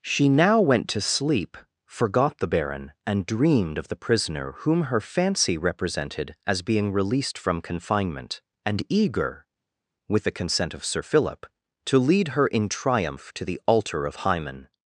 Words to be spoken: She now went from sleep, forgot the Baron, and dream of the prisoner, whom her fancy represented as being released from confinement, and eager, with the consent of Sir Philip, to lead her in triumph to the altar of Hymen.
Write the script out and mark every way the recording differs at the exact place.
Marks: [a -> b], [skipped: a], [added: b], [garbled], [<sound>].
She now went [from -> to] sleep, forgot the Baron, and [dream -> dreamed] of the prisoner, whom her fancy represented as being released from confinement, and eager, with the consent of Sir Philip, to lead her in triumph to the altar of Hymen.